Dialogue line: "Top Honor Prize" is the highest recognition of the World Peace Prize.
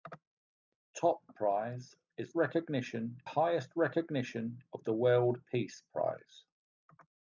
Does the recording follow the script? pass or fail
fail